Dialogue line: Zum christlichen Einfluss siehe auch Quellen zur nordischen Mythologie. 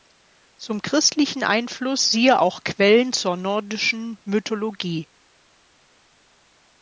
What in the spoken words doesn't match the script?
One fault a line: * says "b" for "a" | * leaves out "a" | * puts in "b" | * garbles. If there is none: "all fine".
all fine